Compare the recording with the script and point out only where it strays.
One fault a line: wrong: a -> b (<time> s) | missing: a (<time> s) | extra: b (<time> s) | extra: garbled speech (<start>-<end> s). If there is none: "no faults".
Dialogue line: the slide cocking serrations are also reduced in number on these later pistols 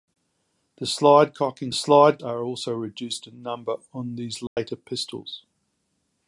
wrong: serrations -> slide (1.7 s)